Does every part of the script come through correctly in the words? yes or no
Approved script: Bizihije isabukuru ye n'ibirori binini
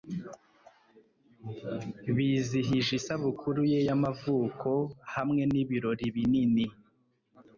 no